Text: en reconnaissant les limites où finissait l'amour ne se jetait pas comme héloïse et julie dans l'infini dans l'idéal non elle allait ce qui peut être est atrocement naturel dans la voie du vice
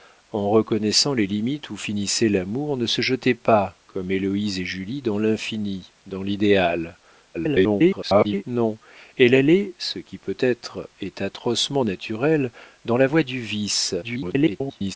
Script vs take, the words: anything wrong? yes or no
yes